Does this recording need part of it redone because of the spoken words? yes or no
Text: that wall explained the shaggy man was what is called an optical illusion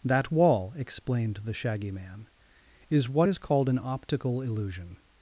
yes